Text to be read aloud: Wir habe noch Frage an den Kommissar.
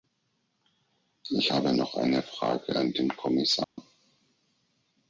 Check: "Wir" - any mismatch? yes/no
yes